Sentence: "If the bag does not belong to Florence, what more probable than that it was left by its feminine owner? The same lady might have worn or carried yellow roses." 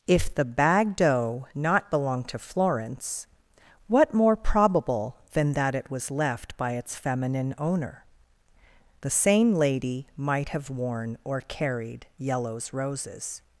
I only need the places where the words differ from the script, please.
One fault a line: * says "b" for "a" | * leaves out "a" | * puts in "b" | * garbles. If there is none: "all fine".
* says "doe" for "does"
* says "yellows" for "yellow"